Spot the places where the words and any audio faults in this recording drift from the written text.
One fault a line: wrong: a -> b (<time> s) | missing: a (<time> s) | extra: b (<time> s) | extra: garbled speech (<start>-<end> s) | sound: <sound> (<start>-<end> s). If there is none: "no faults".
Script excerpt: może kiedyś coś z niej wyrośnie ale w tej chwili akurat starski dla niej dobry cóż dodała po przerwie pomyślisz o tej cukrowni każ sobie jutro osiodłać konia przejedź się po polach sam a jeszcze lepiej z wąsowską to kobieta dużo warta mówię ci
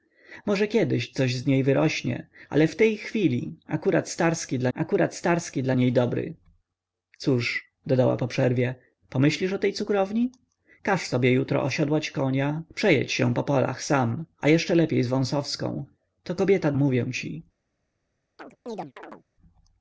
extra: akurat starski dla (4.7 s)
missing: dużo warta (16.7 s)
sound: chirp (18.4-19.2 s)